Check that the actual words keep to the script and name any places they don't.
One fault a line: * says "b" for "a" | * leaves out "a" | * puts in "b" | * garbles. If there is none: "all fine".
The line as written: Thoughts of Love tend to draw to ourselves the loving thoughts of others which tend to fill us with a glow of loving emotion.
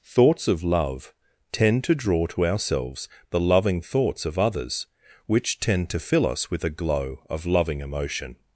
all fine